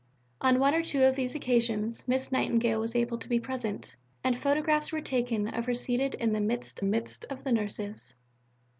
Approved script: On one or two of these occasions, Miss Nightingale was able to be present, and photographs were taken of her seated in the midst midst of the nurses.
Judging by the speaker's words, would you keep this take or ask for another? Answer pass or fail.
pass